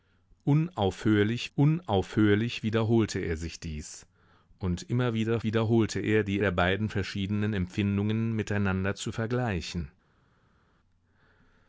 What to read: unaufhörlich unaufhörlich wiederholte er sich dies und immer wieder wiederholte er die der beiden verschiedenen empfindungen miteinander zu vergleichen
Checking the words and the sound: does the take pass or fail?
pass